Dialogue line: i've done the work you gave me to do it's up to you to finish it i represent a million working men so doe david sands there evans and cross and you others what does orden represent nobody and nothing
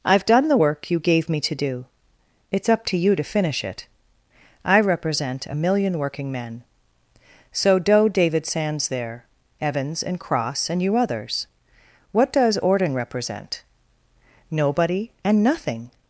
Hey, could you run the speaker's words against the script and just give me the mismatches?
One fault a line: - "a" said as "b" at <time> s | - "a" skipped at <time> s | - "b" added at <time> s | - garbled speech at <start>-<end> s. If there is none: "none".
none